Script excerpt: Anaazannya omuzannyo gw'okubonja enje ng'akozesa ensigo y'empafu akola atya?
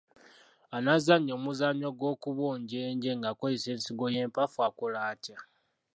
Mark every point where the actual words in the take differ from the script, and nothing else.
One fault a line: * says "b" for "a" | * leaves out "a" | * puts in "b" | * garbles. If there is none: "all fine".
all fine